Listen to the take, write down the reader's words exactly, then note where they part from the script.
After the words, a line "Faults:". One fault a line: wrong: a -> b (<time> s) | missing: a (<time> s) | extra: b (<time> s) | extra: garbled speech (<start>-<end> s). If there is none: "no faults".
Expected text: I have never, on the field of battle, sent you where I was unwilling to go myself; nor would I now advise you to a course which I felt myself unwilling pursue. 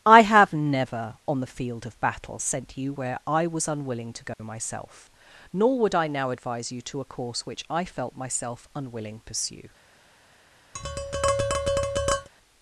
I have never, on the field of battle, sent you where I was unwilling to go myself; nor would I now advise you to a course which I felt myself unwilling pursue.
Faults:
no faults